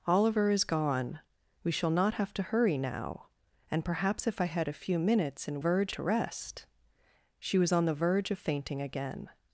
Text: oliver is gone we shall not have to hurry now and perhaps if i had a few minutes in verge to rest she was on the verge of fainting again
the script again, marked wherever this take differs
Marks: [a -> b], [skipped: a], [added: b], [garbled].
oliver is gone we shall not have to hurry now and perhaps if i had a few minutes in verge to rest she was on the verge of fainting again